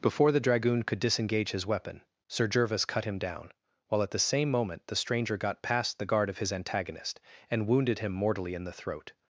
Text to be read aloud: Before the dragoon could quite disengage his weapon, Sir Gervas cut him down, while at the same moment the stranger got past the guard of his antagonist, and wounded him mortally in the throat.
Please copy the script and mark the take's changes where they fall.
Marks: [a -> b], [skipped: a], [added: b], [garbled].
Before the dragoon could [skipped: quite] disengage his weapon, Sir Gervas cut him down, while at the same moment the stranger got past the guard of his antagonist, and wounded him mortally in the throat.